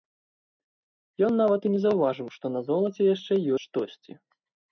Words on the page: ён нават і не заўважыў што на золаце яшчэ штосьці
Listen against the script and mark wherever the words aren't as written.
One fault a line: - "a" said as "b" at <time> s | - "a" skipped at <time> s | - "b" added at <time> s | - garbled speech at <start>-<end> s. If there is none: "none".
none